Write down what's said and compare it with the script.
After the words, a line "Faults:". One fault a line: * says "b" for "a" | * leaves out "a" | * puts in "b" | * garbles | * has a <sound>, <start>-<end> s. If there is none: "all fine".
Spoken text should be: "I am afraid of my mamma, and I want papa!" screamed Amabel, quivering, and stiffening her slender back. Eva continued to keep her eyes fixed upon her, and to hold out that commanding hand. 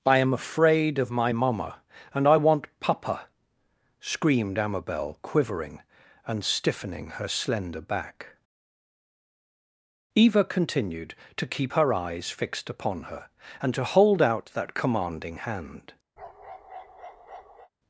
"I am afraid of my mamma, and I want papa!" screamed Amabel, quivering, and stiffening her slender back. Eva continued to keep her eyes fixed upon her, and to hold out that commanding hand.
Faults:
* has a bark, 16.2-17.7 s